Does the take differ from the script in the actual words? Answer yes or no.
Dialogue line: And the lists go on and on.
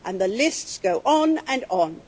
no